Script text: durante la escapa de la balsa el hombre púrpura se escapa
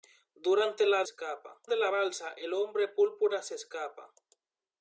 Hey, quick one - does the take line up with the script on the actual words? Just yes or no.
yes